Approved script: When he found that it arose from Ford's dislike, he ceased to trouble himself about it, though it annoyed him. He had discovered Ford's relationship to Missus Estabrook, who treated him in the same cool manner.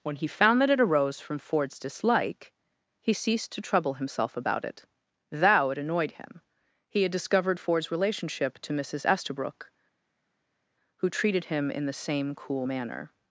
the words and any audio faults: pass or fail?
fail